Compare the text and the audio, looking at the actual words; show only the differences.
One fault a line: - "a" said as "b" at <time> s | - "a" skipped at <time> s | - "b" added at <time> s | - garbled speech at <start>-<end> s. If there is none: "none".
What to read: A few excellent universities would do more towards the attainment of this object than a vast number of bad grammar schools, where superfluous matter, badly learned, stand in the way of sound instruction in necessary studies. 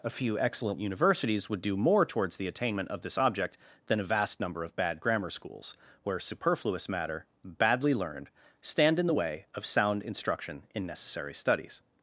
none